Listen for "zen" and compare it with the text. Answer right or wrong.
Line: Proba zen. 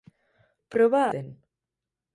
right